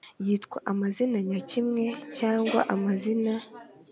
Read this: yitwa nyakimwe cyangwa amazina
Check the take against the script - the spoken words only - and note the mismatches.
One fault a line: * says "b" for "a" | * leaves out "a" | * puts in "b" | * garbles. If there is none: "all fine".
* puts in "amazina"